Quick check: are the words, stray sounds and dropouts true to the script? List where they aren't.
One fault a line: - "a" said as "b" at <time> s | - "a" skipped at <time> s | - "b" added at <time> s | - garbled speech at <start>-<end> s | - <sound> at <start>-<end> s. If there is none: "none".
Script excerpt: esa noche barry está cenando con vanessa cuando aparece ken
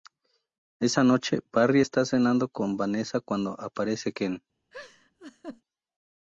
- laugh at 4.7-5.6 s